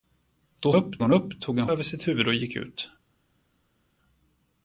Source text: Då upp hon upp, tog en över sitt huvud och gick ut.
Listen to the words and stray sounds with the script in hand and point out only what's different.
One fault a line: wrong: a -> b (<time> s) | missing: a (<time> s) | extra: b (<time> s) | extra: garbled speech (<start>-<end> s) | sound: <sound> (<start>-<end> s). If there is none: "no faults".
no faults